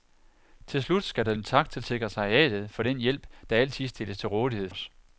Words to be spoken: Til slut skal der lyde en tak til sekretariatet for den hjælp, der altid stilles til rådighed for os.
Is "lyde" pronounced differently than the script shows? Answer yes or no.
yes